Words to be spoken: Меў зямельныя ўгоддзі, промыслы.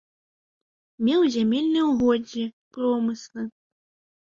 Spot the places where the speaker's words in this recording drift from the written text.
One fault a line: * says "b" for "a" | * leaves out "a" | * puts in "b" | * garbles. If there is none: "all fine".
all fine